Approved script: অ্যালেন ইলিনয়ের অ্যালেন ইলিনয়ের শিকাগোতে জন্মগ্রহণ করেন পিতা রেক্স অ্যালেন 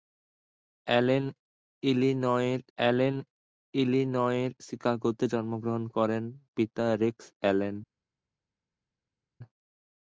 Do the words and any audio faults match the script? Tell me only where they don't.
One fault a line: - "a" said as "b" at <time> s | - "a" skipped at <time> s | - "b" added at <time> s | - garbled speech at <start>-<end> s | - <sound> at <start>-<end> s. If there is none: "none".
none